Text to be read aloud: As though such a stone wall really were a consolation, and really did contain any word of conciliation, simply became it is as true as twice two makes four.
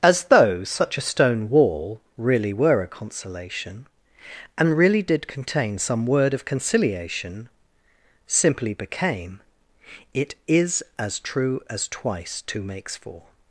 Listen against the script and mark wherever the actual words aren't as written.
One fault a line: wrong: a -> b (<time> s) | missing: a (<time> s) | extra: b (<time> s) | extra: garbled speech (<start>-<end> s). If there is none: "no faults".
wrong: any -> some (5.8 s)